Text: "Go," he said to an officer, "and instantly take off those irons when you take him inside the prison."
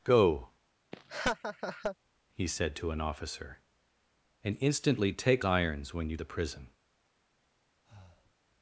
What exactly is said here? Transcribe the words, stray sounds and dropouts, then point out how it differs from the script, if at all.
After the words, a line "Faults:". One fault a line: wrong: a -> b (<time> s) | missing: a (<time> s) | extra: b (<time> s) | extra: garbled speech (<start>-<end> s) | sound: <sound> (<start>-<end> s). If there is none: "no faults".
"Go," he said to an officer, "and instantly take irons when you the prison."
Faults:
sound: laugh (0.9-2.0 s)
missing: off those (5.4 s)
missing: take him inside (6.2 s)
sound: breath (7.8-8.3 s)